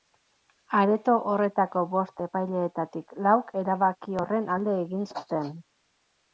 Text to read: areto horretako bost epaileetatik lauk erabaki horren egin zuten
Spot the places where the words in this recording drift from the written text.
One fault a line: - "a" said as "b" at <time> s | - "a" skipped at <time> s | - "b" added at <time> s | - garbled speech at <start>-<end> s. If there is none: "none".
- "alde" added at 4.6 s